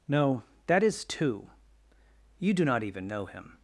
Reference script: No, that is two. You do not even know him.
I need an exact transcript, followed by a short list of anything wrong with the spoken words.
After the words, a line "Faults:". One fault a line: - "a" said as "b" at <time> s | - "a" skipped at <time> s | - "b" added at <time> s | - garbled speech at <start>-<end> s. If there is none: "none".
No, that is two. You do not even know him.
Faults:
none